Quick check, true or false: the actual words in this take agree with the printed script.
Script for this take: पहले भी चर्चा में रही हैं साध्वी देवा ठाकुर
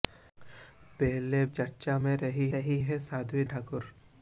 false